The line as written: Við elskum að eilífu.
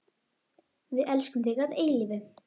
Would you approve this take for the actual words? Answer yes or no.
no